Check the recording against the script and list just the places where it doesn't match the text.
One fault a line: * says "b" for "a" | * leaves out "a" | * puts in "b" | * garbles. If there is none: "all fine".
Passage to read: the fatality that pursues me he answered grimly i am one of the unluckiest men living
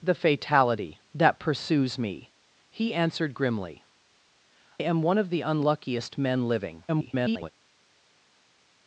* leaves out "i"
* garbles